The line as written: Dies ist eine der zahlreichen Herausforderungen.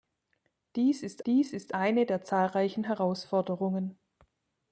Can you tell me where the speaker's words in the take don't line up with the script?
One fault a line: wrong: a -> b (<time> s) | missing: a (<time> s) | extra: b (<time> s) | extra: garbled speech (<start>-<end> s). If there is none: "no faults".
extra: dies ist (1.3 s)